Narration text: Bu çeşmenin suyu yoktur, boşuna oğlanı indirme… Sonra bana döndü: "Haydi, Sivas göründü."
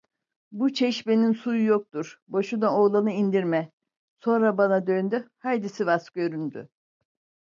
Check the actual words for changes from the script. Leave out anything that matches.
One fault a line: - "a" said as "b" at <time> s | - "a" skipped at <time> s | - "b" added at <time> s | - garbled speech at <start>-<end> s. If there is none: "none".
none